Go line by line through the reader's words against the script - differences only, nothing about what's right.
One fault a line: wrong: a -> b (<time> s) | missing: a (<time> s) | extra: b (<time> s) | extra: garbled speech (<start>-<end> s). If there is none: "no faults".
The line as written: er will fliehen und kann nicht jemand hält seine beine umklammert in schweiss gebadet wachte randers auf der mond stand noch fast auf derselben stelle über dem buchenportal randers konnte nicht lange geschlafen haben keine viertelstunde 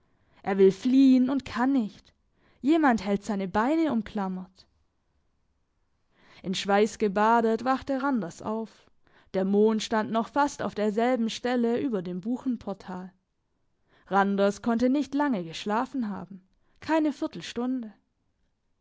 no faults